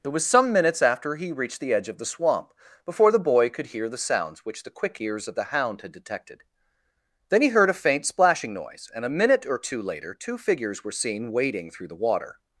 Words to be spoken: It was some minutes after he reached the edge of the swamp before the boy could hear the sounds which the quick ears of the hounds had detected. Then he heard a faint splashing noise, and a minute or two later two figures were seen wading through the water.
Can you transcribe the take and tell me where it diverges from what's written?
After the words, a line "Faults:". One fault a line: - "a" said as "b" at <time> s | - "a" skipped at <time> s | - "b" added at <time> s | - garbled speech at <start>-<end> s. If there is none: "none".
It was some minutes after he reached the edge of the swamp before the boy could hear the sounds which the quick ears of the hound had detected. Then he heard a faint splashing noise, and a minute or two later two figures were seen wading through the water.
Faults:
- "hounds" said as "hound" at 5.5 s